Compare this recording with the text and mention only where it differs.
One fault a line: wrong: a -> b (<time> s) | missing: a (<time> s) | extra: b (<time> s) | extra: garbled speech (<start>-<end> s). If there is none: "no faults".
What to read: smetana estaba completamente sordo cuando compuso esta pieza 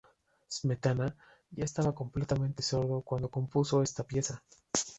extra: ya (1.5 s)